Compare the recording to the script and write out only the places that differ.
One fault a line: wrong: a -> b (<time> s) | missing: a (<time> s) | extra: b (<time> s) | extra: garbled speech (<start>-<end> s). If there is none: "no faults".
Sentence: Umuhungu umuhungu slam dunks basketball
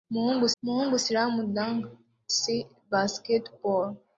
no faults